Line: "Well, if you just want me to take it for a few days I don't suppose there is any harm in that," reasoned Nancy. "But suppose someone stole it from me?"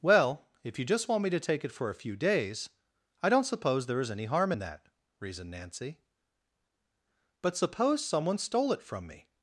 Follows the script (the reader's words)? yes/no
yes